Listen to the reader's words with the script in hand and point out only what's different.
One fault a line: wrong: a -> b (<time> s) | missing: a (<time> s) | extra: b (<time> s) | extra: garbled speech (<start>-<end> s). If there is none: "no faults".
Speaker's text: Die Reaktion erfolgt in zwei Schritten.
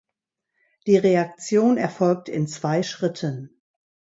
no faults